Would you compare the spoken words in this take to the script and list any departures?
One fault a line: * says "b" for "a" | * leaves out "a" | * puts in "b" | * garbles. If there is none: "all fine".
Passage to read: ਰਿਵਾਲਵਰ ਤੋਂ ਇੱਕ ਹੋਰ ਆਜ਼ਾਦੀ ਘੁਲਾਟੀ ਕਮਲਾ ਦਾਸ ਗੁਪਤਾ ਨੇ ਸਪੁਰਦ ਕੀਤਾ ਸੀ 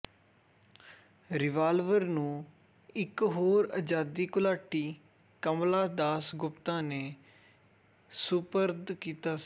* says "ਨੂੰ" for "ਤੋਂ"